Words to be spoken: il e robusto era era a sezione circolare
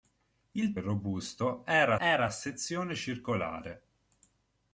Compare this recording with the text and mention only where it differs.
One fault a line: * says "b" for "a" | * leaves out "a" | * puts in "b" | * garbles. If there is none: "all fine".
all fine